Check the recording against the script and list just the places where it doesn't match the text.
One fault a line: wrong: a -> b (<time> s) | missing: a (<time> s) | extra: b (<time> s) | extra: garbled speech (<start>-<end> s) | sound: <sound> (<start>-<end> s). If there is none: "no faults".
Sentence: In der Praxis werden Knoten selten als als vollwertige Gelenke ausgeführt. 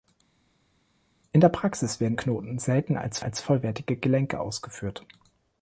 no faults